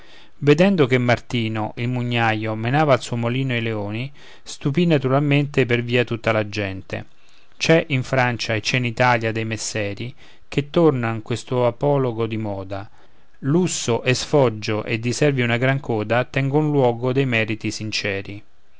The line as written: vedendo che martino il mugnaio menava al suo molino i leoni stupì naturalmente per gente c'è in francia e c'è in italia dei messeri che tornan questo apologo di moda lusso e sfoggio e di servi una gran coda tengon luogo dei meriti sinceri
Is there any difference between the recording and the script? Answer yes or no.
yes